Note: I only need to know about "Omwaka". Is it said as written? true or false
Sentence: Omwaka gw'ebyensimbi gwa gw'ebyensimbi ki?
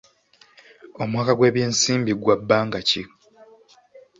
true